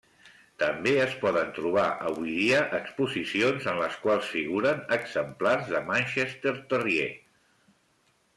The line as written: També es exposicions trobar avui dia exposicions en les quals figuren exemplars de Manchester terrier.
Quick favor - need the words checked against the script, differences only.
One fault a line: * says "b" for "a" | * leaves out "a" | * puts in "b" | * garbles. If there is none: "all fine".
* says "poden" for "exposicions"